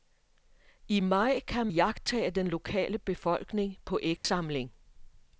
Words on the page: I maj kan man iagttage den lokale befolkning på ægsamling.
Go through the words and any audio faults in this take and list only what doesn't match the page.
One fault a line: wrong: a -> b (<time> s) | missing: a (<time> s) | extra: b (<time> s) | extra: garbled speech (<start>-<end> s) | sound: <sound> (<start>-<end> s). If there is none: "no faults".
missing: man (1.7 s)
sound: dropout (4.2-4.2 s)